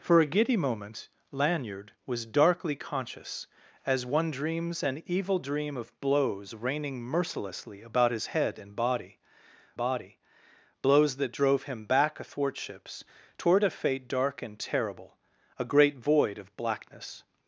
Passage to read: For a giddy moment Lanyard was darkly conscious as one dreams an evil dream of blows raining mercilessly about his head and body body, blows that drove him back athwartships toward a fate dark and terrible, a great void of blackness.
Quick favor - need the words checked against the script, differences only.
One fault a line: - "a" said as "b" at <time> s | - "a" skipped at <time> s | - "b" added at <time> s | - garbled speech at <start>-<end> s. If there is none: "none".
none